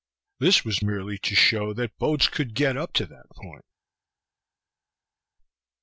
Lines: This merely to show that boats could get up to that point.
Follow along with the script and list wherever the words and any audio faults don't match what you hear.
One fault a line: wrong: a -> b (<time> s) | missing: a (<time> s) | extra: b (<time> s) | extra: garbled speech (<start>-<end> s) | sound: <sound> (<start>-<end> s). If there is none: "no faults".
extra: was (0.7 s)